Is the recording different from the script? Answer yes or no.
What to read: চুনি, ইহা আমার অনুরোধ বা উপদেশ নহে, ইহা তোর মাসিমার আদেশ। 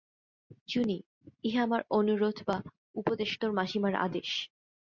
yes